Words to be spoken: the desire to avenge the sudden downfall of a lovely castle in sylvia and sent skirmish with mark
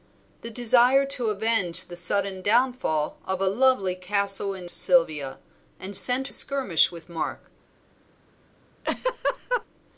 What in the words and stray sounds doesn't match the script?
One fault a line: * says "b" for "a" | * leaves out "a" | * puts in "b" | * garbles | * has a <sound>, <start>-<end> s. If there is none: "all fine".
* has a laugh, 8.8-9.7 s